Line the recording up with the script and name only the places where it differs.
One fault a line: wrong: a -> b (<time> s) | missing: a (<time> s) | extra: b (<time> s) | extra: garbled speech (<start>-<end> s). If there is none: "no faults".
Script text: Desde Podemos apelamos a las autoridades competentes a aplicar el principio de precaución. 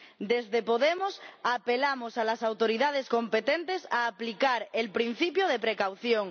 no faults